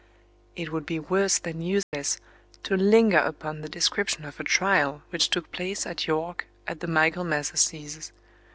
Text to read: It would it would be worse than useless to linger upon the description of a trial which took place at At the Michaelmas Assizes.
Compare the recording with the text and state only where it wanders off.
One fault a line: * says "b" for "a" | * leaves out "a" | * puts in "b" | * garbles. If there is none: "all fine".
* leaves out "it would"
* puts in "York"